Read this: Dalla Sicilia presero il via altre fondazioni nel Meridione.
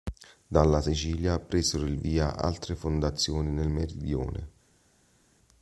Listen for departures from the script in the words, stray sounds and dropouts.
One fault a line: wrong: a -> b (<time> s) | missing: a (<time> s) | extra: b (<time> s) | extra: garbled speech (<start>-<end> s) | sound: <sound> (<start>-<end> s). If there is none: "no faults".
no faults